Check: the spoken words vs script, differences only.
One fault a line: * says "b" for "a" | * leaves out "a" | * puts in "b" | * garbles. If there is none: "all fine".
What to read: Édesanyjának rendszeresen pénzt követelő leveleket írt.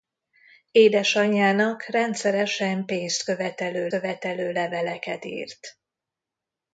* puts in "követelő"